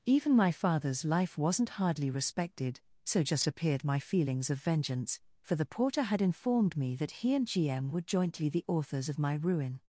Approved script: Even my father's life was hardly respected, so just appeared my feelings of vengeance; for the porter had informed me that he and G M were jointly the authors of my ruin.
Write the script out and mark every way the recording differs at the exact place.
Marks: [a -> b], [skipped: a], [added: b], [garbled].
Even my father's life [was -> wasn't] hardly respected, so just appeared my feelings of vengeance; for the porter had informed me that he and G M were jointly the authors of my ruin.